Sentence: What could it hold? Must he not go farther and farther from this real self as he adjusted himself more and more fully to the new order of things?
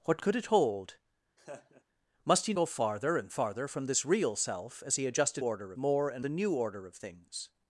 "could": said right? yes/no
yes